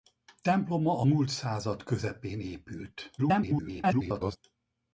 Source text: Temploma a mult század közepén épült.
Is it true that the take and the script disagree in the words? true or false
true